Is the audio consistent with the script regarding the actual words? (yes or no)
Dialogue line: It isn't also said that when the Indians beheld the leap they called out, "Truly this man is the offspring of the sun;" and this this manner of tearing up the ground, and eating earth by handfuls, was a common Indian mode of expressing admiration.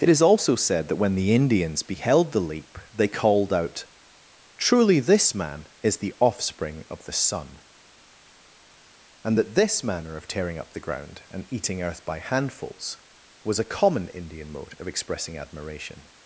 no